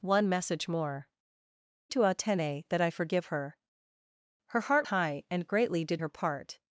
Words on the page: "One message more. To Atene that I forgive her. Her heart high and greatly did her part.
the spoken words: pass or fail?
pass